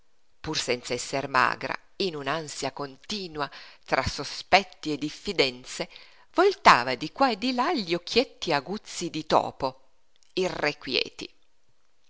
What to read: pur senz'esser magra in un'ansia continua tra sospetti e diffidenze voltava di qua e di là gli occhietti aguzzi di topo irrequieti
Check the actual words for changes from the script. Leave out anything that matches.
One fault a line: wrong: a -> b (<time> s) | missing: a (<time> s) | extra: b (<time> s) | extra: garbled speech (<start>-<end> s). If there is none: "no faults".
no faults